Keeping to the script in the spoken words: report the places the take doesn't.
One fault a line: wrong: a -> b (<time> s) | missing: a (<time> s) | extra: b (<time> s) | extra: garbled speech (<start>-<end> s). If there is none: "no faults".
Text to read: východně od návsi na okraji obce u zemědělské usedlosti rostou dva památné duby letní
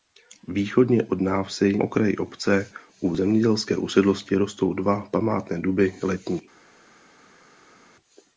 missing: na (1.8 s)